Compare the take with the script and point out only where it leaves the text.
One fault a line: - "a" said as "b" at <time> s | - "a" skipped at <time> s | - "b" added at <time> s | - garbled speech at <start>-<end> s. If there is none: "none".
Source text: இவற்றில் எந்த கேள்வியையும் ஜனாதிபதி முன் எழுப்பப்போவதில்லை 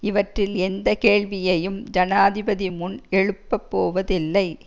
none